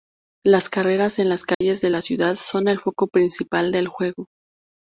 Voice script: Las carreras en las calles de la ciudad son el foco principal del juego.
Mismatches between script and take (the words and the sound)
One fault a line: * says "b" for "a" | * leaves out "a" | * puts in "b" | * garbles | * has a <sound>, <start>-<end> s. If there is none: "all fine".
* has a dropout, 1.5-1.6 s